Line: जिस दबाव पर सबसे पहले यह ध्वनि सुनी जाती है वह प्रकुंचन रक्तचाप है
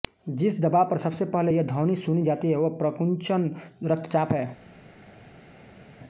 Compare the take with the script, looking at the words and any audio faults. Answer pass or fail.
pass